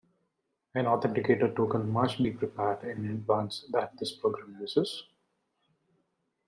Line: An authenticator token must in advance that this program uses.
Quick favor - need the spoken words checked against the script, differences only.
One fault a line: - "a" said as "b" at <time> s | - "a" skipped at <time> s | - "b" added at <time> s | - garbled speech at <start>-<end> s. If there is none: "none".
- "be prepared" added at 2.2 s